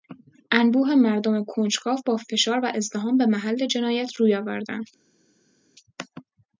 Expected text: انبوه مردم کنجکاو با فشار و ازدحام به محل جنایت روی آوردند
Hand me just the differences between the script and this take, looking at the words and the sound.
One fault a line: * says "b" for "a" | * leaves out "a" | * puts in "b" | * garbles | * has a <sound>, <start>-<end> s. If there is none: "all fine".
all fine